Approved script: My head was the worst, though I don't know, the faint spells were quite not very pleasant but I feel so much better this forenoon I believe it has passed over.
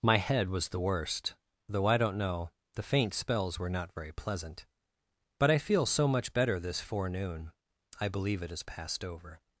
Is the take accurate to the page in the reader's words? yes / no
no